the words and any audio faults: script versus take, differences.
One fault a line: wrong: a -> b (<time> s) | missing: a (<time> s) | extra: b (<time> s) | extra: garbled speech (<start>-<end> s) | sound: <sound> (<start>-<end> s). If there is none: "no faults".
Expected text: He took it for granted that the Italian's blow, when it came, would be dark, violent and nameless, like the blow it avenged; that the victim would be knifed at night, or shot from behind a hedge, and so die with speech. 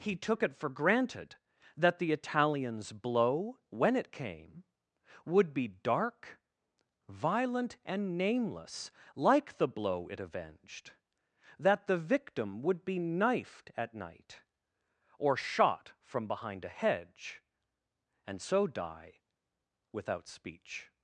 wrong: with -> without (19.9 s)